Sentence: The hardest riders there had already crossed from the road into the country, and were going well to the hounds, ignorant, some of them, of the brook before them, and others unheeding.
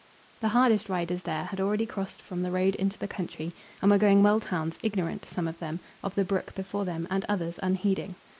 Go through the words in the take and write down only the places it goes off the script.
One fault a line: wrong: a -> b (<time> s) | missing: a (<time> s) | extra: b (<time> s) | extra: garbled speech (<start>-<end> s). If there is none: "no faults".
missing: the (4.5 s)